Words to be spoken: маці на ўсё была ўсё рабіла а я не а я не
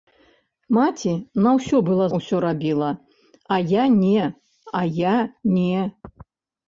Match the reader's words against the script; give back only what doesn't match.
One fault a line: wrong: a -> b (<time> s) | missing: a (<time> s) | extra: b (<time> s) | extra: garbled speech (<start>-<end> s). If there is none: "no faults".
no faults